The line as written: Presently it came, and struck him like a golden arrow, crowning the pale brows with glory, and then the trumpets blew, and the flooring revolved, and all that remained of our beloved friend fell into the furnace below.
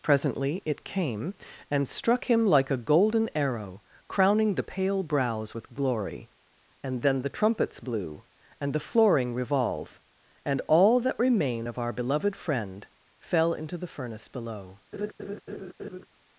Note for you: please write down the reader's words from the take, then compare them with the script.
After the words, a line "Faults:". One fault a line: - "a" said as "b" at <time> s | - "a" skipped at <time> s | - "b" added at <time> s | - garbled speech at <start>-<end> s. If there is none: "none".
Presently it came, and struck him like a golden arrow, crowning the pale brows with glory, and then the trumpets blew, and the flooring revolve, and all that remain of our beloved friend fell into the furnace below.
Faults:
- "revolved" said as "revolve" at 9.3 s
- "remained" said as "remain" at 11.2 s